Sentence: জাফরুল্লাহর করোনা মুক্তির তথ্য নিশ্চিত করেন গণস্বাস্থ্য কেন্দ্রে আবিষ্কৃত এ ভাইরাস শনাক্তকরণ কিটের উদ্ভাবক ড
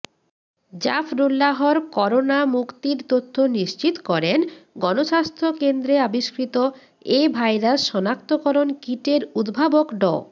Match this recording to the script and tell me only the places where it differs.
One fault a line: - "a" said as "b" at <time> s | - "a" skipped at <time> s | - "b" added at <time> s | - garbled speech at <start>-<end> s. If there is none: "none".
none